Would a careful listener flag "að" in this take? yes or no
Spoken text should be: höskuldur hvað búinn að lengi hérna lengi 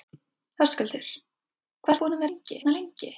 no